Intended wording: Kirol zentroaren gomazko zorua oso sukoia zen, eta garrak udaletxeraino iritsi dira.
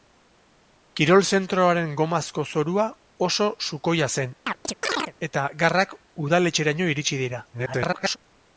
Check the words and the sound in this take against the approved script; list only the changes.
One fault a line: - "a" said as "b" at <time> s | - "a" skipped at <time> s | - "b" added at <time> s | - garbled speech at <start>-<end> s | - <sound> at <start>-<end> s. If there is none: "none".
- chirp at 4.5-5.1 s
- garbled speech at 7.5-8.2 s